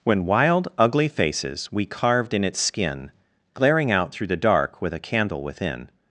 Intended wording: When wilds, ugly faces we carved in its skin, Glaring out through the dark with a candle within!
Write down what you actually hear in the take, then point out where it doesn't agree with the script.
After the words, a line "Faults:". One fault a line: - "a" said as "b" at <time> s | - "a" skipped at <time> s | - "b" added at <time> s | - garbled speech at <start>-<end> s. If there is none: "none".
When wild, ugly faces we carved in its skin, Glaring out through the dark with a candle within!
Faults:
- "wilds" said as "wild" at 0.2 s